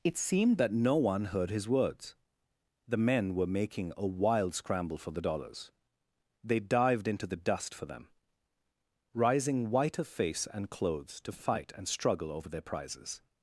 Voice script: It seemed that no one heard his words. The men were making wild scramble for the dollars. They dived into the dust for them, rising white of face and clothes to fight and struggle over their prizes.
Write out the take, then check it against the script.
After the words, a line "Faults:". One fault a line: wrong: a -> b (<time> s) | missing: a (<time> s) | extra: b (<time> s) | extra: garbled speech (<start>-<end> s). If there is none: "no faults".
It seemed that no one heard his words. The men were making a wild scramble for the dollars. They dived into the dust for them, rising white of face and clothes to fight and struggle over their prizes.
Faults:
extra: a (4.0 s)